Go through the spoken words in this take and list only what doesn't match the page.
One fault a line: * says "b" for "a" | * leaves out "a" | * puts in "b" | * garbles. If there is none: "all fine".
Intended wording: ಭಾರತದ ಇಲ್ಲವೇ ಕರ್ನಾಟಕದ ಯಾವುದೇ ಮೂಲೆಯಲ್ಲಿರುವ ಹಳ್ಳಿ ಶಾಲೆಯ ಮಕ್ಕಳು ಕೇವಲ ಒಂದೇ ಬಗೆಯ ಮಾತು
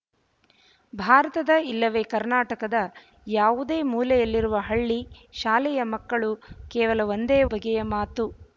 all fine